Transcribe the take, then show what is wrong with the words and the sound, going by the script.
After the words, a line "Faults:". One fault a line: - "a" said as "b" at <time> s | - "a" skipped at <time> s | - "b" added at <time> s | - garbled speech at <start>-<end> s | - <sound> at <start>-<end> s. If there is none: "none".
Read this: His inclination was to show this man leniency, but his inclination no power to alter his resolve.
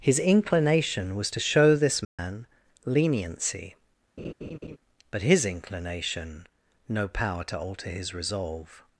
His inclination was to show this man leniency, but his inclination no power to alter his resolve.
Faults:
- dropout at 2.0-2.2 s
- laugh at 4.2-4.8 s